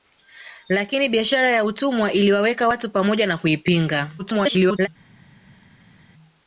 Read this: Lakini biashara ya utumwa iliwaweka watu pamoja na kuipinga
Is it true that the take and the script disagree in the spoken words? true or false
true